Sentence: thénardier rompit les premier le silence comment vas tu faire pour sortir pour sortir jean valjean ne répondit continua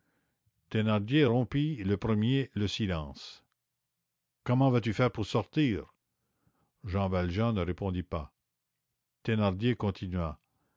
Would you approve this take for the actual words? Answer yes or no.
no